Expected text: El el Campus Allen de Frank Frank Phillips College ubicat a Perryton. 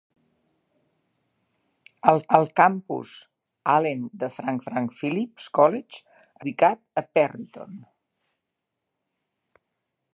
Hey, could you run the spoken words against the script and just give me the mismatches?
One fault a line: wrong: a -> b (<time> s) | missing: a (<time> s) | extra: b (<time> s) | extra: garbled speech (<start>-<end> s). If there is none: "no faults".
no faults